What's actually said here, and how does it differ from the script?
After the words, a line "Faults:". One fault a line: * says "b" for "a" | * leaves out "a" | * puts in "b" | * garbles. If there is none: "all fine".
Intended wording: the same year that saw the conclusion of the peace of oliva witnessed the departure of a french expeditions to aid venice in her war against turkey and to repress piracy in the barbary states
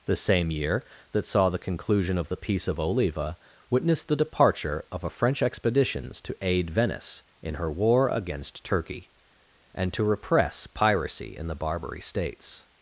the same year that saw the conclusion of the peace of oliva witnessed the departure of a french expeditions to aid venice in her war against turkey and to repress piracy in the barbary states
Faults:
all fine